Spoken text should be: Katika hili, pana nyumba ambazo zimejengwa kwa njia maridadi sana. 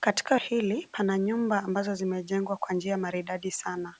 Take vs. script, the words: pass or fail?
pass